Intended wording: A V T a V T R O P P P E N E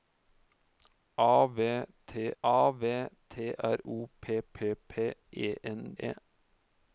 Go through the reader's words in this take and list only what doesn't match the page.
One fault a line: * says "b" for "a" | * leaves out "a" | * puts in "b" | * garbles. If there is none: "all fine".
all fine